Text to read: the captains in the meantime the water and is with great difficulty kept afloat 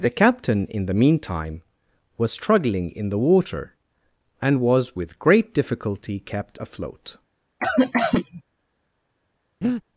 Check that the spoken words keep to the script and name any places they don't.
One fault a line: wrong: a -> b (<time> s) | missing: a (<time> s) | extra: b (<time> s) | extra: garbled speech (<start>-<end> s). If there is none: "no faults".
wrong: captains -> captain (0.1 s)
extra: was struggling in (2.2 s)
wrong: is -> was (4.6 s)